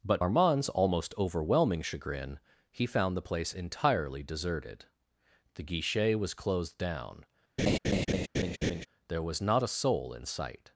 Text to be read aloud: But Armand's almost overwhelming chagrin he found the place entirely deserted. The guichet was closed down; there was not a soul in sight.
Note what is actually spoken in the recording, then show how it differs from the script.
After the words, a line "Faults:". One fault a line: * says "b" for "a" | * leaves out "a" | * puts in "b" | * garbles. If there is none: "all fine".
But Armand's almost overwhelming chagrin he found the place entirely deserted. The guichet was closed down; there was not a soul in sight.
Faults:
all fine